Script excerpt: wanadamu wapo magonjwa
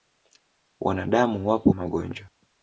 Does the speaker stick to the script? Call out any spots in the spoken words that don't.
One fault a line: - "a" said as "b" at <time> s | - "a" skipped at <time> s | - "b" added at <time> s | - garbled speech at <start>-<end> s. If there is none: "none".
none